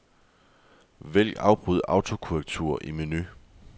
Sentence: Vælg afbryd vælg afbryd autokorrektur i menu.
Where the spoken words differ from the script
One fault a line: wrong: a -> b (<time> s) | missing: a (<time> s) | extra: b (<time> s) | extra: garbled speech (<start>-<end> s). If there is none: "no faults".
missing: vælg afbryd (1.8 s)